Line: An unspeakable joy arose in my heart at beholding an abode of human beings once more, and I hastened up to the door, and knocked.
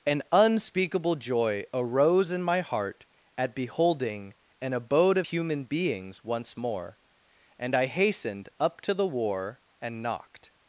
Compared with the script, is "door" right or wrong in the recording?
wrong